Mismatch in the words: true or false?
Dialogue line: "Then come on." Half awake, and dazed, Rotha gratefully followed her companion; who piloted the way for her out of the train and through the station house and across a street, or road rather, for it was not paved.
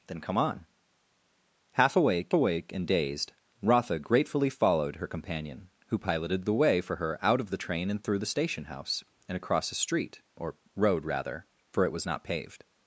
true